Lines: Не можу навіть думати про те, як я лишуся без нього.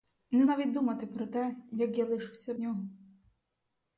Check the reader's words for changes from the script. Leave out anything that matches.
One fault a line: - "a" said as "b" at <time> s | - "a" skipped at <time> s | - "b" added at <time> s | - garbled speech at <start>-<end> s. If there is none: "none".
- "можу" skipped at 0.5 s
- "без" skipped at 2.5 s